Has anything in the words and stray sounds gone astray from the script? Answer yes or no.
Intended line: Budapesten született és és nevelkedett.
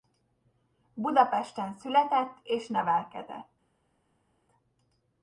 yes